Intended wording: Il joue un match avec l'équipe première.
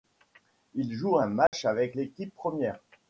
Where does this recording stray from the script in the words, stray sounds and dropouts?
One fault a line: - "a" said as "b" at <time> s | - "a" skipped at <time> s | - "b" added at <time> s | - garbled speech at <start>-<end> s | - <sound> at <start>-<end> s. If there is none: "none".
- dropout at 1.5-1.5 s